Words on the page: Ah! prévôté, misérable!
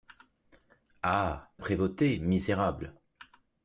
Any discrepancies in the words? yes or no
no